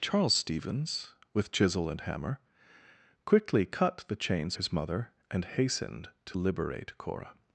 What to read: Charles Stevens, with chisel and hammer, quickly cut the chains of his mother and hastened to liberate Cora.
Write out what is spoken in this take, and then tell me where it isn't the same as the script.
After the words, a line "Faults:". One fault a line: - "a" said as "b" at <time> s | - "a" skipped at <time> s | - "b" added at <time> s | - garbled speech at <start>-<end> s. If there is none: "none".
Charles Stevens, with chisel and hammer, quickly cut the chains his mother and hastened to liberate Cora.
Faults:
- "of" skipped at 4.6 s